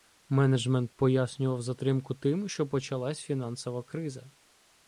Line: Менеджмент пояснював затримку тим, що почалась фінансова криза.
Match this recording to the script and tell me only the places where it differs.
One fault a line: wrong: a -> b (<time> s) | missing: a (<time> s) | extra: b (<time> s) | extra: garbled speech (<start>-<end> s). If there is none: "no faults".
no faults